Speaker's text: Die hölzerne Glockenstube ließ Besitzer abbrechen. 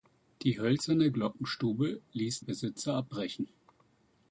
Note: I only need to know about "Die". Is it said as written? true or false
true